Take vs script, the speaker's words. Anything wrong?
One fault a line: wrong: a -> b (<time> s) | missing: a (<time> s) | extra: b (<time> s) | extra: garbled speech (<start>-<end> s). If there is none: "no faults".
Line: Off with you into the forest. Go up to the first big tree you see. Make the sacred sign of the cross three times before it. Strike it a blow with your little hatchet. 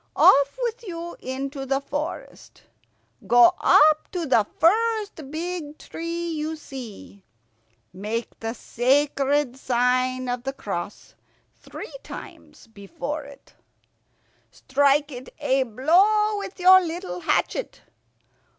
no faults